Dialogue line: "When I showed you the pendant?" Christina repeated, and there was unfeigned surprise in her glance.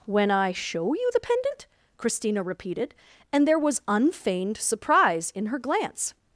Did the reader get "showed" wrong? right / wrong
wrong